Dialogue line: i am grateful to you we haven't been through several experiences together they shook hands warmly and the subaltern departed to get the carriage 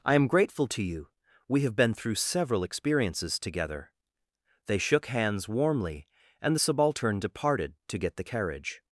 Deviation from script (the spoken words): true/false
true